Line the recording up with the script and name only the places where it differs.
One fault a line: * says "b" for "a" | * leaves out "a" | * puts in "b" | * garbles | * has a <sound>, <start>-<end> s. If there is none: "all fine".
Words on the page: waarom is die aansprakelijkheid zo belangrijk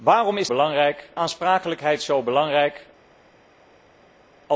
* says "belangrijk" for "die"